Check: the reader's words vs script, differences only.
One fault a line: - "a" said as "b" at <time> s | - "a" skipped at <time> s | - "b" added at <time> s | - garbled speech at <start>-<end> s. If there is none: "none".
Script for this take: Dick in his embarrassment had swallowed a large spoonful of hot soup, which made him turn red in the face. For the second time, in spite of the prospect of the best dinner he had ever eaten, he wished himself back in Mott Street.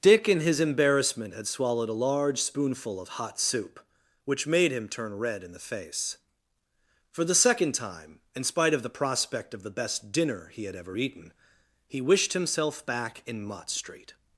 none